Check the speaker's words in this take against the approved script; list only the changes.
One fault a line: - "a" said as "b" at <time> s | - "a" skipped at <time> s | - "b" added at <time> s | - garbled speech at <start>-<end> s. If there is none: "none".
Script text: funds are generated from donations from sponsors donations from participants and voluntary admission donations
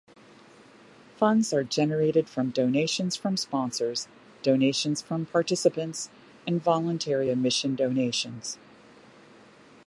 none